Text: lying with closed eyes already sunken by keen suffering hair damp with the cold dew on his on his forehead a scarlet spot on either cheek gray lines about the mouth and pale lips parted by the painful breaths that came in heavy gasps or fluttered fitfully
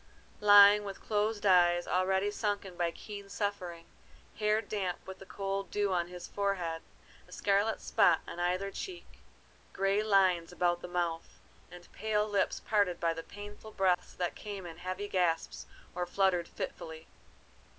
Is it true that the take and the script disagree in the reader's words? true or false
true